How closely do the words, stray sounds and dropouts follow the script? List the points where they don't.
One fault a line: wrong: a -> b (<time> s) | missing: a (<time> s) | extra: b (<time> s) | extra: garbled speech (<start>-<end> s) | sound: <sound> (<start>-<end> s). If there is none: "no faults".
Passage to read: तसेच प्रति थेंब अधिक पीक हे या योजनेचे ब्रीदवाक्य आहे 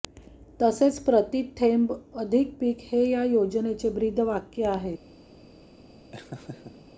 sound: laugh (6.1-6.9 s)